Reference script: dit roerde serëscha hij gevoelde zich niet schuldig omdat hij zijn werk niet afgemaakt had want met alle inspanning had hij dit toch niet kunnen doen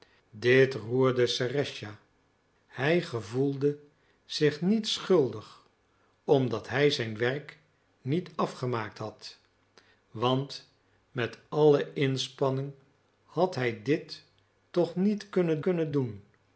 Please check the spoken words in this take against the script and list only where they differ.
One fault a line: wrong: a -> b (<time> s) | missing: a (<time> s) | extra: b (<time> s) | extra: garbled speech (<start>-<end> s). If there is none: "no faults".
extra: kunnen (15.6 s)